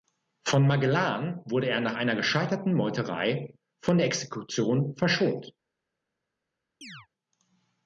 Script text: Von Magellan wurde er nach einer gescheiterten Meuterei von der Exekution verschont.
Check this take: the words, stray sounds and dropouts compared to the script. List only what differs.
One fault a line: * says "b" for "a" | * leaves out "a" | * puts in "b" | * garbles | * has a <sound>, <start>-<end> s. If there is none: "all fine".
* has a chirp, 6.8-7.1 s